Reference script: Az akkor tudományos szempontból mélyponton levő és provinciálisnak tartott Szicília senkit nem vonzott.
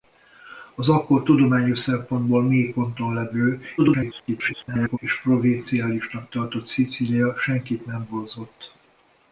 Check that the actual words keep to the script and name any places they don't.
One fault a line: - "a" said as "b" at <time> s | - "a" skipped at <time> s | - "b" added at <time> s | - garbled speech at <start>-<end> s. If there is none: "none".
- garbled speech at 3.8-5.0 s